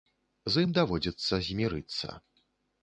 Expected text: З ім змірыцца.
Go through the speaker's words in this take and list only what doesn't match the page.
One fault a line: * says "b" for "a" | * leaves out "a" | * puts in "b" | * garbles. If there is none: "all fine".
* puts in "даводзіцца"